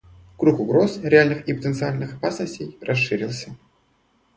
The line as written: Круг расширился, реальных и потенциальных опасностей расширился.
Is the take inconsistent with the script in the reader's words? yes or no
yes